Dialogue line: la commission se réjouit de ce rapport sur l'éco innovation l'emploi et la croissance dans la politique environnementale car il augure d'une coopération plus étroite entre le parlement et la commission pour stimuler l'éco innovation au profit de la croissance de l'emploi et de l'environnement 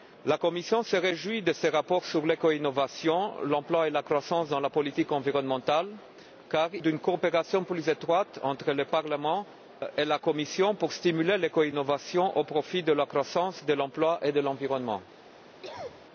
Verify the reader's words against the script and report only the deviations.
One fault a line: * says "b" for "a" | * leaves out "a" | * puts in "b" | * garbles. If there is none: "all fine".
* leaves out "il augure"